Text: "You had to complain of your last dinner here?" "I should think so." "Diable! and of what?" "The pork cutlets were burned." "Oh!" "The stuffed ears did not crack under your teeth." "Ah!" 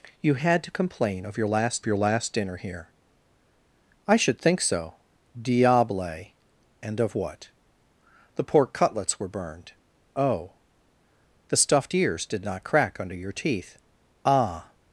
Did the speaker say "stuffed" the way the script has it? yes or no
yes